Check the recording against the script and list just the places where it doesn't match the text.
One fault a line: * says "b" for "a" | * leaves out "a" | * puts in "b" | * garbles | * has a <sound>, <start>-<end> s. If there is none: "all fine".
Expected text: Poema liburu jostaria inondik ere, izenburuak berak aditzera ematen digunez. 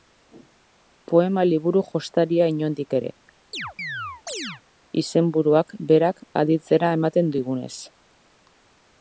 * has a chirp, 3.5-4.6 s